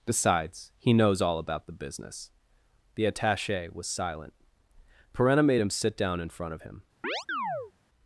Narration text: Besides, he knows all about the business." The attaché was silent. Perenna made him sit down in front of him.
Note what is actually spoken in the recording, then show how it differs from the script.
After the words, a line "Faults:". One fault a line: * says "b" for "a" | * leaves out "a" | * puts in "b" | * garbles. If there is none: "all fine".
Besides, he knows all about the business." The attaché was silent. Perenna made him sit down in front of him.
Faults:
all fine